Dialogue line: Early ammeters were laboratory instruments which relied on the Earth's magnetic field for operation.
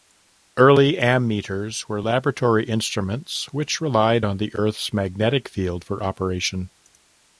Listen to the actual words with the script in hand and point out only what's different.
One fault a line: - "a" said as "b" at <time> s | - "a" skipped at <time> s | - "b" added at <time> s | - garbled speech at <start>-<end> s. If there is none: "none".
none